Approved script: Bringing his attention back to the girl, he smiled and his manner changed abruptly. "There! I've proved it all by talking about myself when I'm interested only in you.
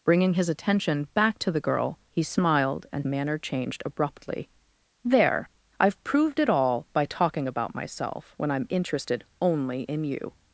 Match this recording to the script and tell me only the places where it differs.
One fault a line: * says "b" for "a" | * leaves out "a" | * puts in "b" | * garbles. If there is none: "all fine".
* leaves out "his"